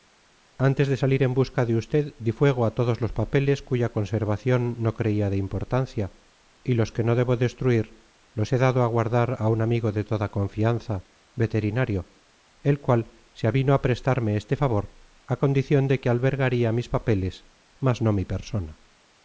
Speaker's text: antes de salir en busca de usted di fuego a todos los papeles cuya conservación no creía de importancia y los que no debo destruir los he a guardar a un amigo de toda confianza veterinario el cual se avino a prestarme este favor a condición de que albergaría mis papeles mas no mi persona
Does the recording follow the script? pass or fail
fail